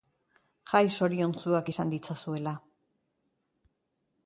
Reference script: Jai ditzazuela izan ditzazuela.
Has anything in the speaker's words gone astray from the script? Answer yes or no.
yes